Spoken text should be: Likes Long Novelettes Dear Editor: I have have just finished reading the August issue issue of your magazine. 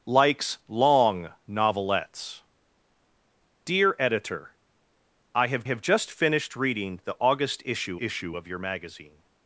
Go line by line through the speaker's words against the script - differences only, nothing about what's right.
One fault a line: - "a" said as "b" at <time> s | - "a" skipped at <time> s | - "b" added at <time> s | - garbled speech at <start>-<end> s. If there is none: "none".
none